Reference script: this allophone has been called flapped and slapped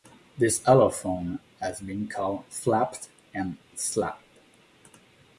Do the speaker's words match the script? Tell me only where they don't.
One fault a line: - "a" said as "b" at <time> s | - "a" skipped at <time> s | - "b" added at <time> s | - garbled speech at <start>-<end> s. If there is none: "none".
none